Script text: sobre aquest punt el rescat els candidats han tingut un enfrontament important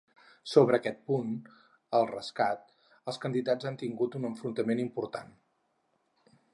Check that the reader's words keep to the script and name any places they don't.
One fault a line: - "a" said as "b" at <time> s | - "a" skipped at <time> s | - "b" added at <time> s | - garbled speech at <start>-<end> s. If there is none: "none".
none